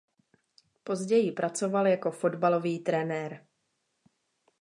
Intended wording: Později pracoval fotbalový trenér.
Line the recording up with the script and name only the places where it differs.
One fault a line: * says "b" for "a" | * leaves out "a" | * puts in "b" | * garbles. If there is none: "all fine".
* puts in "jako"